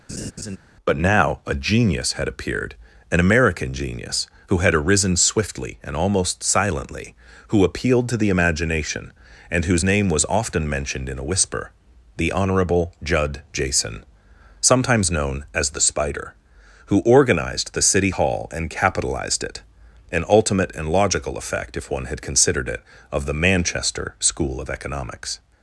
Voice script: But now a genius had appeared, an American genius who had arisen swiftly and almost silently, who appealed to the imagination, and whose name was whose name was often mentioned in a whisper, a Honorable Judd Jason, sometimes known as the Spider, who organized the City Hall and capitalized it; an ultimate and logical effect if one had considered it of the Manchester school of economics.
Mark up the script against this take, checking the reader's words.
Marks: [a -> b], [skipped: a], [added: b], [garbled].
But now a genius had appeared, an American genius who had arisen swiftly and almost silently, who appealed to the imagination, and whose name was [skipped: whose name was] often mentioned in a whisper, [a -> the] Honorable Judd Jason, sometimes known as the Spider, who organized the City Hall and capitalized it; an ultimate and logical effect if one had considered it of the Manchester school of economics.